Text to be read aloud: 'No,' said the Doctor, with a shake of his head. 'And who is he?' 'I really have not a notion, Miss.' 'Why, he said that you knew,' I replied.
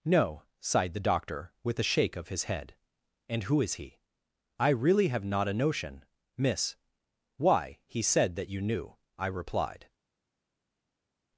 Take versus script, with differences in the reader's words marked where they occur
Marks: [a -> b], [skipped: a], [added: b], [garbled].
'No,' [said -> sighed] the Doctor, with a shake of his head. 'And who is he?' 'I really have not a notion, Miss.' 'Why, he said that you knew,' I replied.